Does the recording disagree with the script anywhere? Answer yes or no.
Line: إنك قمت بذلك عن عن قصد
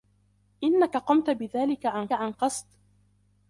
no